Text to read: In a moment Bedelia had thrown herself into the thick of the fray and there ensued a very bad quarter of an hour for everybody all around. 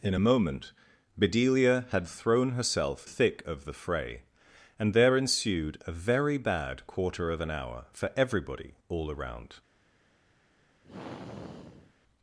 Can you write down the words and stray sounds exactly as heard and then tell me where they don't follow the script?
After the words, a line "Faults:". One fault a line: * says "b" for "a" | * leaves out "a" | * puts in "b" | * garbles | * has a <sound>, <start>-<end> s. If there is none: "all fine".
In a moment Bedelia had thrown herself thick of the fray and there ensued a very bad quarter of an hour for everybody all around.
Faults:
* leaves out "into the"
* has a sigh, 10.8-11.9 s